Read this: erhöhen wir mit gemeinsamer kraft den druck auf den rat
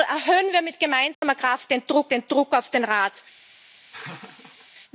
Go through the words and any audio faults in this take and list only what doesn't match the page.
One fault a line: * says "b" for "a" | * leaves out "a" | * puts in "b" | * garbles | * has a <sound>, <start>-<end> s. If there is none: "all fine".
* has a dropout, 1.1-1.2 s
* puts in "den druck"
* has a laugh, 3.9-4.7 s